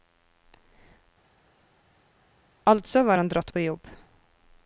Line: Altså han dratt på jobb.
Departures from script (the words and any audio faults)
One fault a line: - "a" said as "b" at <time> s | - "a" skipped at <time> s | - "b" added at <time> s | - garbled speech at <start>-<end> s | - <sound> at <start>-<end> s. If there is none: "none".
- "var" added at 3.0 s